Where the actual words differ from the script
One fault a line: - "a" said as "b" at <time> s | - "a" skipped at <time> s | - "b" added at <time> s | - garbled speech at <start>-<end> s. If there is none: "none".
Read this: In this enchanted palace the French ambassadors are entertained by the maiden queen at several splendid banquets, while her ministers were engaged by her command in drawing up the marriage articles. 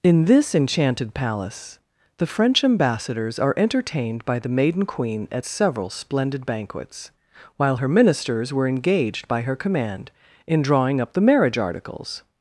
none